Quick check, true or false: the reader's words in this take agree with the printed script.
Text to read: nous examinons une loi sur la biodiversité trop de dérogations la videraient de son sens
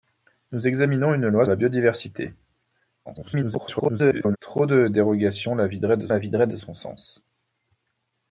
false